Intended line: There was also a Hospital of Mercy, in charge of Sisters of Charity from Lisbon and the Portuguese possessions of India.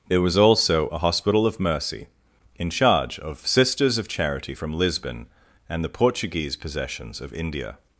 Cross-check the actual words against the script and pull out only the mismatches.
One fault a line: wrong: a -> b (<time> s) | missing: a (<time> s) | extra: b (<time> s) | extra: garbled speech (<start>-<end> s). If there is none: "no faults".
wrong: There -> It (0.1 s)